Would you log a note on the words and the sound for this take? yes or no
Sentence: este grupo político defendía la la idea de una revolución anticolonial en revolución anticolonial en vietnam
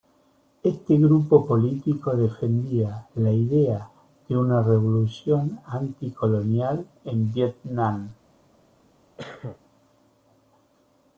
yes